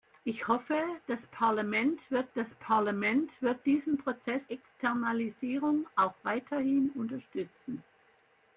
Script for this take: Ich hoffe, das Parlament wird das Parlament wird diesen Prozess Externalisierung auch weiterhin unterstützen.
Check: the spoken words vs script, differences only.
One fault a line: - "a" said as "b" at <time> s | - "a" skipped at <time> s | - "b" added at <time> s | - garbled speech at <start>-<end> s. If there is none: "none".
none